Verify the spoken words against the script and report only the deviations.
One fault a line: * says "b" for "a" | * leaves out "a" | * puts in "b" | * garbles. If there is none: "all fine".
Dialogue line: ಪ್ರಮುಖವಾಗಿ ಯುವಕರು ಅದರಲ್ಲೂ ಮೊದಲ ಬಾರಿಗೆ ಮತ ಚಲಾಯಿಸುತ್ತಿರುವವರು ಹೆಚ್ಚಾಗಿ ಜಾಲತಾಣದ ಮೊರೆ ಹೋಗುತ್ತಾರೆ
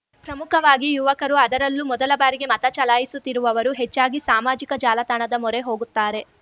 * puts in "ಸಾಮಾಜಿಕ"